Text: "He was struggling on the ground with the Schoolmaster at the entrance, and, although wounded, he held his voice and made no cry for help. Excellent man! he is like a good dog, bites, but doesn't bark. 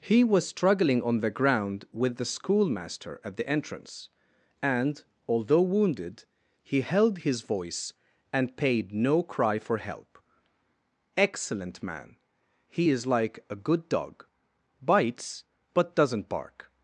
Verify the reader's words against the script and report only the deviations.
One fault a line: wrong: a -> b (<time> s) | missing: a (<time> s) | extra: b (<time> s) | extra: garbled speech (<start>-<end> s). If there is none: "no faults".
wrong: made -> paid (8.6 s)